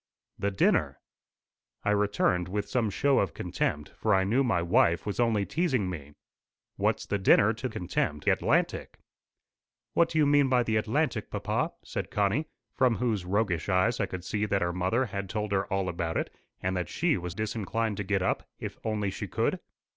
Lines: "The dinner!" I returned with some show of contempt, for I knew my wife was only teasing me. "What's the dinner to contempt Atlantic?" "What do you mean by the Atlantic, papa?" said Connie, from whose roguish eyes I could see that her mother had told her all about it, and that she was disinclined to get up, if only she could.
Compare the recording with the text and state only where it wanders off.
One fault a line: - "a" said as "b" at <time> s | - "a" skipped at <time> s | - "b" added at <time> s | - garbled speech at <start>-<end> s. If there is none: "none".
none